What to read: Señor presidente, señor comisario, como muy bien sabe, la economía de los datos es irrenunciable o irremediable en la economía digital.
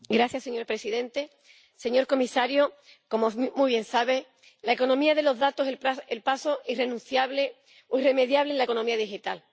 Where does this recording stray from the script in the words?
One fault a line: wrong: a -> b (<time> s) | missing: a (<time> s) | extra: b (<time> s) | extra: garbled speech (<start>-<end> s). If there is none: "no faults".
extra: el paso (6.1 s)